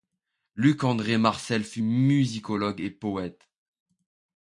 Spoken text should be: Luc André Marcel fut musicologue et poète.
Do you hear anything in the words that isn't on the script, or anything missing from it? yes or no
no